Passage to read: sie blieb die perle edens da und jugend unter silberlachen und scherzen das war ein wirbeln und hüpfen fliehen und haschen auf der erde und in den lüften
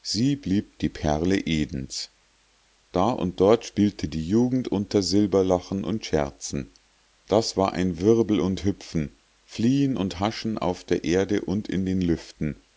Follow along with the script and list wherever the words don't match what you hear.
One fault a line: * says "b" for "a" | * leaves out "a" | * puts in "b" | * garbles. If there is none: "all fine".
* puts in "dort spielte die"